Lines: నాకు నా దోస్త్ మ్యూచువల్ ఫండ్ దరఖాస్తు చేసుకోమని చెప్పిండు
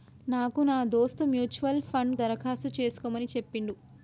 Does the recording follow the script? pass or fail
pass